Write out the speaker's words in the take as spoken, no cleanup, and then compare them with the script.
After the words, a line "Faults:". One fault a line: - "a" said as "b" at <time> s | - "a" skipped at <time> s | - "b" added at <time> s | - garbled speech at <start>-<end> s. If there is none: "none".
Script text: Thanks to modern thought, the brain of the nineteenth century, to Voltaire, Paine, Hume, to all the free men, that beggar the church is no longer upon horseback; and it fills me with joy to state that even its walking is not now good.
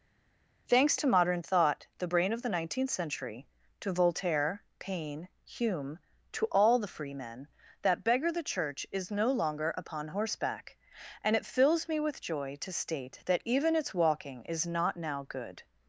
Thanks to modern thought, the brain of the nineteenth century, to Voltaire, Paine, Hume, to all the free men, that beggar the church is no longer upon horseback; and it fills me with joy to state that even its walking is not now good.
Faults:
none